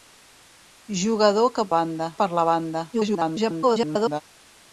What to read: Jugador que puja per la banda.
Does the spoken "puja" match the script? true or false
false